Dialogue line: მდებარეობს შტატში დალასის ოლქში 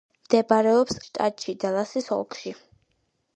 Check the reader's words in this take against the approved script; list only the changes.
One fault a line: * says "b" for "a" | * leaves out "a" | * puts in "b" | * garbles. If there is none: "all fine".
all fine